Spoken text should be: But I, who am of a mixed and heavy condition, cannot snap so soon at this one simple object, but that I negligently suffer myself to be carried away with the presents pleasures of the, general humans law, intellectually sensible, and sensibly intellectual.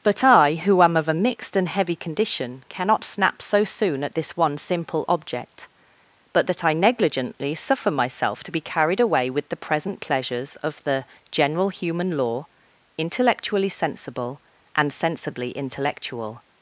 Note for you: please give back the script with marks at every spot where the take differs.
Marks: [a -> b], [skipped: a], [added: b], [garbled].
But I, who am of a mixed and heavy condition, cannot snap so soon at this one simple object, but that I negligently suffer myself to be carried away with the [presents -> present] pleasures of the, general [humans -> human] law, intellectually sensible, and sensibly intellectual.